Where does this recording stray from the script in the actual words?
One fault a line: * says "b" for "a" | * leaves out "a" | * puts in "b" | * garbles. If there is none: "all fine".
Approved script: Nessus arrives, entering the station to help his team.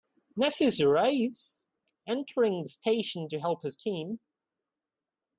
all fine